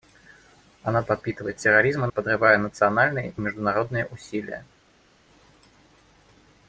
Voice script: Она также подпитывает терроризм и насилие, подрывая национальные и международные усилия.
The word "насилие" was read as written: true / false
false